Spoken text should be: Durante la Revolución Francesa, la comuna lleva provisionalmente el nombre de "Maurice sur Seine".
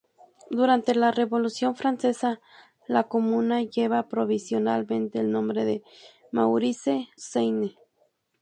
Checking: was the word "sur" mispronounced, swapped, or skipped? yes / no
yes